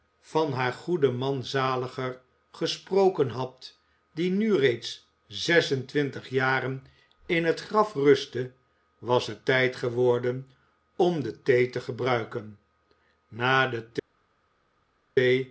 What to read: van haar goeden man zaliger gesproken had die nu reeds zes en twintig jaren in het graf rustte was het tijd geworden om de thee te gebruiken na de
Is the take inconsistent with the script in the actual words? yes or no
no